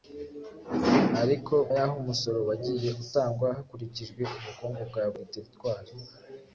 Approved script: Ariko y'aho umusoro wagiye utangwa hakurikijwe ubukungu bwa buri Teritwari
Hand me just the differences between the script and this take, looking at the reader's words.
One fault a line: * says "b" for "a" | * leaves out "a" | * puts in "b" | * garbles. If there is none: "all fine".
all fine